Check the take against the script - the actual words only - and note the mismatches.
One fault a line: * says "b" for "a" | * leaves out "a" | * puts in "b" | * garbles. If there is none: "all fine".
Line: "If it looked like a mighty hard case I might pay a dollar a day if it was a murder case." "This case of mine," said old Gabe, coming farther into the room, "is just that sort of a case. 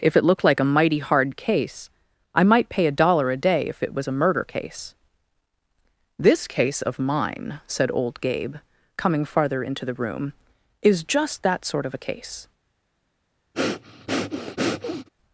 all fine